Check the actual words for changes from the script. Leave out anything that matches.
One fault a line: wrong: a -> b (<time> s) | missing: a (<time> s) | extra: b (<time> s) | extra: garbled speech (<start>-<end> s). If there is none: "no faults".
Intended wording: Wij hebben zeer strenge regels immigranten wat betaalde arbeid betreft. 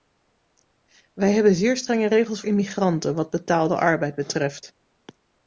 no faults